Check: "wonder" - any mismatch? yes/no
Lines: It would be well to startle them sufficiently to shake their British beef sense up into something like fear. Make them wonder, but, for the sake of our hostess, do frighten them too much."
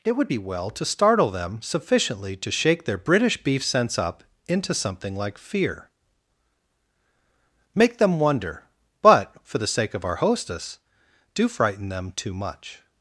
no